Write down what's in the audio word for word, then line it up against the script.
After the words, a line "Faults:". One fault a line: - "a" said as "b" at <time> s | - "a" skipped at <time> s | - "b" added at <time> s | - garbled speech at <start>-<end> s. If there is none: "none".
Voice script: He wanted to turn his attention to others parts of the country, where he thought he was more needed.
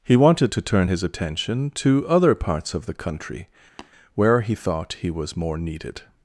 He wanted to turn his attention to other parts of the country, where he thought he was more needed.
Faults:
- "others" said as "other" at 2.1 s